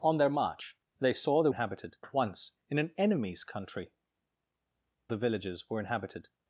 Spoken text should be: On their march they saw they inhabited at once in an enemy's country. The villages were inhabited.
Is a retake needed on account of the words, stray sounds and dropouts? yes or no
no